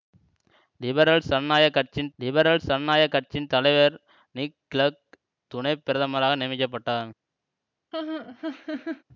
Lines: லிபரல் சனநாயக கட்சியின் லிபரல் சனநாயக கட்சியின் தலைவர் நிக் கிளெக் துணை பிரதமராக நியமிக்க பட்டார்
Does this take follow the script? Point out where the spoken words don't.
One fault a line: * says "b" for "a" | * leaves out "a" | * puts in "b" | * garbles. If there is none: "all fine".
all fine